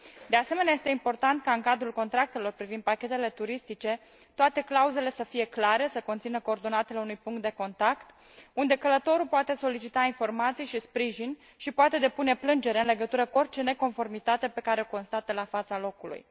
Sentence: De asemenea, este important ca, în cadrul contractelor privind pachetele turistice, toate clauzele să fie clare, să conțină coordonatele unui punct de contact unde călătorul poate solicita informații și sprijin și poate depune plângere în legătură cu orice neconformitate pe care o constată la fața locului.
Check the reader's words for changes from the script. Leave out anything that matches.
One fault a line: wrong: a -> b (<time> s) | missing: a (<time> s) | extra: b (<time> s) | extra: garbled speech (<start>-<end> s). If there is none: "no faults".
no faults